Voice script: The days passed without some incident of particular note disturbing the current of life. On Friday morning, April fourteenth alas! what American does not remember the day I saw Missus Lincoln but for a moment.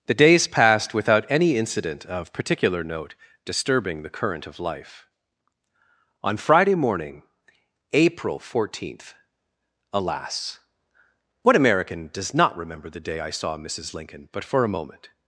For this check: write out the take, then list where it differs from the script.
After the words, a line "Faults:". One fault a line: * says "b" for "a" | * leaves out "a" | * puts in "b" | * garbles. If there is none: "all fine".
The days passed without any incident of particular note disturbing the current of life. On Friday morning, April fourteenth alas! what American does not remember the day I saw Missus Lincoln but for a moment.
Faults:
* says "any" for "some"